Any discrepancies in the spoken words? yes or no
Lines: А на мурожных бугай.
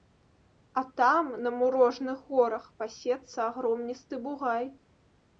yes